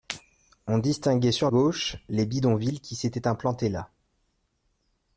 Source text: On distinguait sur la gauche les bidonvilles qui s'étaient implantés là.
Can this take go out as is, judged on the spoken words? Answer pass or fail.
fail